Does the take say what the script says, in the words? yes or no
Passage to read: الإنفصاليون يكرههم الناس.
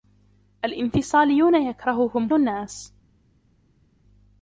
yes